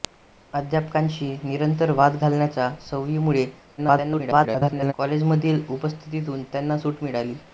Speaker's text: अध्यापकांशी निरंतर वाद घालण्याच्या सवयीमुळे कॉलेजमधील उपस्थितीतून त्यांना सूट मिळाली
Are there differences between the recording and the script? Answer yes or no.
yes